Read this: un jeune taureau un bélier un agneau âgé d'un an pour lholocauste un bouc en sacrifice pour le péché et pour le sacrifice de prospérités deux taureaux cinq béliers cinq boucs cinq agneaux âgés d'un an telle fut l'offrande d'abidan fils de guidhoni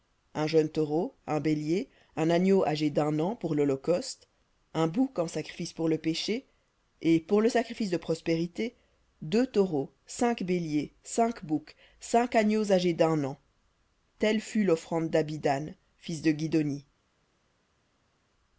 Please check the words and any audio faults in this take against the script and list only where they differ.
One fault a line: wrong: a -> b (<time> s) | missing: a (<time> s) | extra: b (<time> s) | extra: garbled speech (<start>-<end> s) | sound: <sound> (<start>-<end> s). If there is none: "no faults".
no faults